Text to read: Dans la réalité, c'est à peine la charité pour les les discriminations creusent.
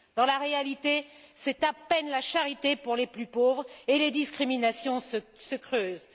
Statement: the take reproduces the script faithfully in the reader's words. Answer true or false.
false